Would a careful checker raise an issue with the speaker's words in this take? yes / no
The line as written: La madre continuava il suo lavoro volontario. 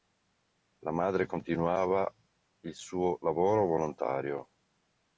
no